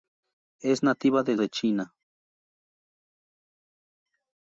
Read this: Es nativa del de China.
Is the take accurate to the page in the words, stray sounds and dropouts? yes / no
yes